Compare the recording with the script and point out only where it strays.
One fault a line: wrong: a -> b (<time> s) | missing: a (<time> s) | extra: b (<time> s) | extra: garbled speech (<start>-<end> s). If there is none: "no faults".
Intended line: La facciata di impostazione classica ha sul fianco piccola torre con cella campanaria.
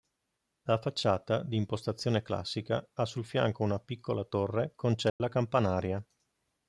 extra: una (3.6 s)